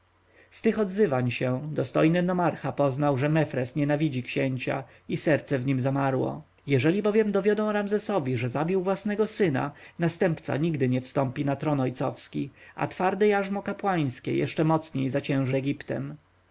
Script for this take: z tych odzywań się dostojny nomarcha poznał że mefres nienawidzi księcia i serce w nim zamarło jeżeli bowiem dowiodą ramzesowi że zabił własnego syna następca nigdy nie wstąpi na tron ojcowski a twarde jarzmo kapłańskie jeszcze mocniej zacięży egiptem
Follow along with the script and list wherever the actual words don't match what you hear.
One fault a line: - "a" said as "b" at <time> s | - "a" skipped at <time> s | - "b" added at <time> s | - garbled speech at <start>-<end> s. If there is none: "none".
none